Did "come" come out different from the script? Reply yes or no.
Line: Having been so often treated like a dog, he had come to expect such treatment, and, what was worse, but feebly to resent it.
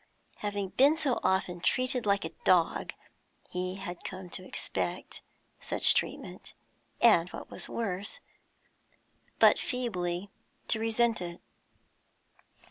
no